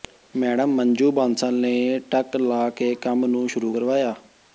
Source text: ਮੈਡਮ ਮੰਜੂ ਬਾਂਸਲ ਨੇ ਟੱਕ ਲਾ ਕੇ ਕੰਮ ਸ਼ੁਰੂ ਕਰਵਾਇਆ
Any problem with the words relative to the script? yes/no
yes